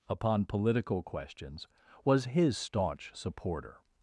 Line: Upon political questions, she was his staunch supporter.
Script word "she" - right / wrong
wrong